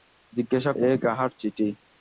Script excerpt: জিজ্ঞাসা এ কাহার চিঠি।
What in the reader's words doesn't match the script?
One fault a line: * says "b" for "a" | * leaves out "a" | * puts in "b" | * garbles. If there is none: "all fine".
all fine